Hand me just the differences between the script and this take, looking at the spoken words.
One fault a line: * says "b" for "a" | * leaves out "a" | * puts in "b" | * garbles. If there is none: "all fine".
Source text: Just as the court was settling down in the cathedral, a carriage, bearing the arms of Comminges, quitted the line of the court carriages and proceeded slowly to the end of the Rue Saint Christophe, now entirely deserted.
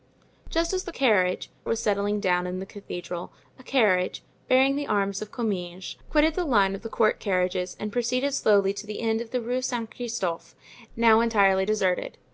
* says "carriage" for "court"